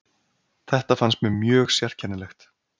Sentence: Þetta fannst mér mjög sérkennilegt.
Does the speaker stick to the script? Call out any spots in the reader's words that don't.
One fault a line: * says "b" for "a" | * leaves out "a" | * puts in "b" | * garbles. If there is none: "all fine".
all fine